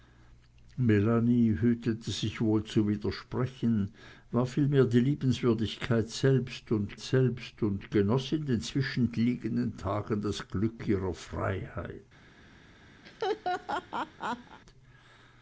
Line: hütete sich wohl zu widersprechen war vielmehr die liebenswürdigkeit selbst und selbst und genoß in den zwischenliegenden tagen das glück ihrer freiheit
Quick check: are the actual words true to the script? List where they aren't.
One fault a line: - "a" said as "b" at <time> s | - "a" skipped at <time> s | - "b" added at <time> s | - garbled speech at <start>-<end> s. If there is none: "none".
none